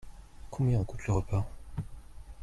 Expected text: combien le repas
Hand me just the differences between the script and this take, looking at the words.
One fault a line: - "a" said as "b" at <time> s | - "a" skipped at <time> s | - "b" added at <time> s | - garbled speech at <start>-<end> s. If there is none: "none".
- "coûte" added at 0.8 s